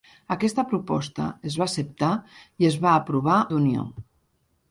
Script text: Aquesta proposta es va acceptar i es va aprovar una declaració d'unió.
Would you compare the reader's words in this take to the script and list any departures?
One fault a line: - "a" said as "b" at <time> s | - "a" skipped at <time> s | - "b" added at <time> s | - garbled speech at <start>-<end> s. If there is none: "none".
- "una declaració" skipped at 3.4 s